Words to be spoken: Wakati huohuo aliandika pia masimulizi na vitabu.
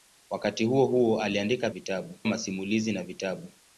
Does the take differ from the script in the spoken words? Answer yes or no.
yes